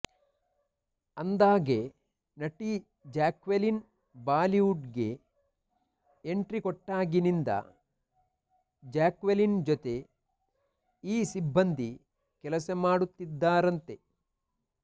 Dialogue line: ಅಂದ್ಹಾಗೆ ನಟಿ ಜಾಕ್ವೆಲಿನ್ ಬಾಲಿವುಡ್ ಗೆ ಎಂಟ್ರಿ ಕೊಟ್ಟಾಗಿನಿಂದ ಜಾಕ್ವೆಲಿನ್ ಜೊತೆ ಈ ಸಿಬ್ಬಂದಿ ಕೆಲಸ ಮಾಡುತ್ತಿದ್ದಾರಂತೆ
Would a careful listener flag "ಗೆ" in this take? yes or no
no